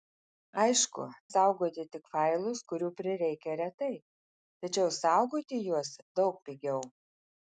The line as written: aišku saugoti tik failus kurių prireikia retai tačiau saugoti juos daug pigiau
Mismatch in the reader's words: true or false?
false